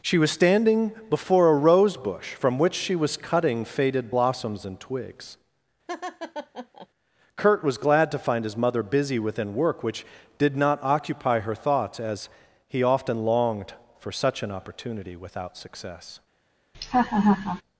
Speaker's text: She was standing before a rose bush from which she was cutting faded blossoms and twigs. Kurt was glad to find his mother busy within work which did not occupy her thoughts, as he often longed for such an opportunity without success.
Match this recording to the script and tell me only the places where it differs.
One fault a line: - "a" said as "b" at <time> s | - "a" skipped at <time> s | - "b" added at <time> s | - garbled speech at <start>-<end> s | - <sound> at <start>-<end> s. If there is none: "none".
- laugh at 5.9-6.9 s
- laugh at 16.7-17.6 s